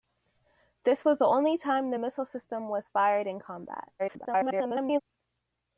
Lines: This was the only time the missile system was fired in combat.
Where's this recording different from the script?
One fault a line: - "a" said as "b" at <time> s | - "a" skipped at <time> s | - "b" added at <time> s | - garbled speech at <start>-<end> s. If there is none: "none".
- garbled speech at 4.0-5.0 s